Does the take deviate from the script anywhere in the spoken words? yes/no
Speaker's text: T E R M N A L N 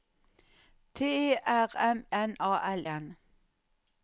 no